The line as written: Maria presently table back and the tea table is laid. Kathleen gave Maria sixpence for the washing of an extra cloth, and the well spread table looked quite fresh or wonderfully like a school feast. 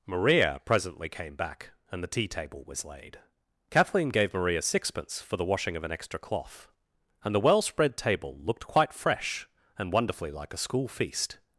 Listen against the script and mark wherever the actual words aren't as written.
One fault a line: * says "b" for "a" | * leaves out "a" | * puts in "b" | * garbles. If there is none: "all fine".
* says "came" for "table"
* says "was" for "is"
* says "and" for "or"